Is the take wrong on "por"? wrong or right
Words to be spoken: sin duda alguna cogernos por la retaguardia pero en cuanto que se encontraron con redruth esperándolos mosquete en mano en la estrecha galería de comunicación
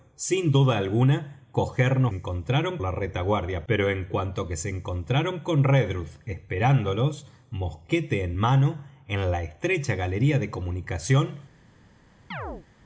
wrong